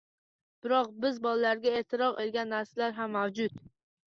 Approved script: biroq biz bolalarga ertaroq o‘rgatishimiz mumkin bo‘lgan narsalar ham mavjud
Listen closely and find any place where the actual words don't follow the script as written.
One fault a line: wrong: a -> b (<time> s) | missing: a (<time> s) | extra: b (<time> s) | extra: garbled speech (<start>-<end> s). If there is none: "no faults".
missing: o‘rgatishimiz mumkin (2.2 s)